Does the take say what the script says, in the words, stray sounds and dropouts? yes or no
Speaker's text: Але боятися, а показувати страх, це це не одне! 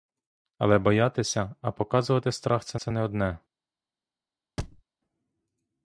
no